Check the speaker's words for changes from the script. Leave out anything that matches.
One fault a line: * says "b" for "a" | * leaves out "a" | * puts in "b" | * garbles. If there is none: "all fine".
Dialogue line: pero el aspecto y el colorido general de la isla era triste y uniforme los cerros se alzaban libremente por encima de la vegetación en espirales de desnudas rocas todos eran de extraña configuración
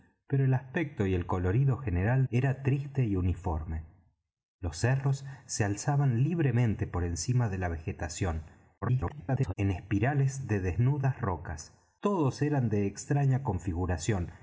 * leaves out "de la isla"
* garbles